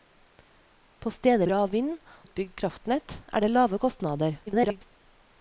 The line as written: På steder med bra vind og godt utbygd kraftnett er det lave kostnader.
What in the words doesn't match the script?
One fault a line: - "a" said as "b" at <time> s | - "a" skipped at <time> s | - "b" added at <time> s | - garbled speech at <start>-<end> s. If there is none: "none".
- "med" skipped at 1.5 s
- "og godt" skipped at 1.9 s
- garbled speech at 4.5-4.9 s